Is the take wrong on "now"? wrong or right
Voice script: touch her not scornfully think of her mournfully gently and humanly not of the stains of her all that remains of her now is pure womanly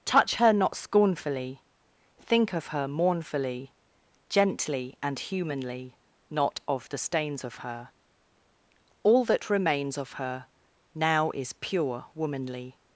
right